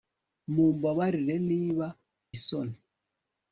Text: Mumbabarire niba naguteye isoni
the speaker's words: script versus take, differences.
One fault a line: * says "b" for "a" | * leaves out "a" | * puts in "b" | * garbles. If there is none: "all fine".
* leaves out "naguteye"